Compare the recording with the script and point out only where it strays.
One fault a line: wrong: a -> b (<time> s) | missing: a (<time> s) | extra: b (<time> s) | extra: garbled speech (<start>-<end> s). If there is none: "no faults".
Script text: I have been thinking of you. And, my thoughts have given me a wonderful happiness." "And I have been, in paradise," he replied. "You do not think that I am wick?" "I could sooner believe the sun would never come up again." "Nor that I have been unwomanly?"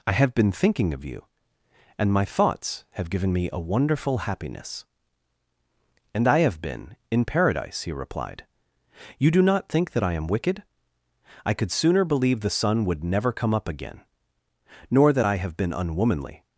wrong: wick -> wicked (10.2 s)